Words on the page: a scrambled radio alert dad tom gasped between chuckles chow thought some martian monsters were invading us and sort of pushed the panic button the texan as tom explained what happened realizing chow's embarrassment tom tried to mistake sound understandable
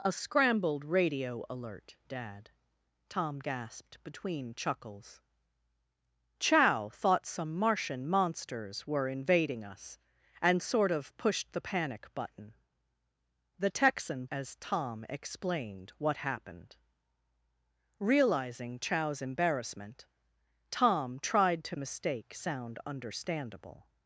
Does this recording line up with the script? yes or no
yes